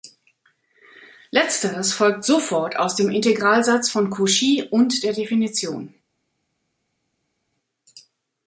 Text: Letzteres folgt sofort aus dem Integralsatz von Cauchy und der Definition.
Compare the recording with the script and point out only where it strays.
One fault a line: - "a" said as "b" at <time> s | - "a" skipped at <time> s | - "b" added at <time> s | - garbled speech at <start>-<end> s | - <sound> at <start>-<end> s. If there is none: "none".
none